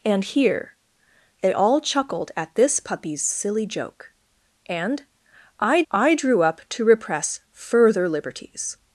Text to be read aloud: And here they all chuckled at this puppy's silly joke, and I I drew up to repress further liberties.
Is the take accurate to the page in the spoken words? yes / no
yes